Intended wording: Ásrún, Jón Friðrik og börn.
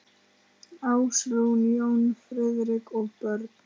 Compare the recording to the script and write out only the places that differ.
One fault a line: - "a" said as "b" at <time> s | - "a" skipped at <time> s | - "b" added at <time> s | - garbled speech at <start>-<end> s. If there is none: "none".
none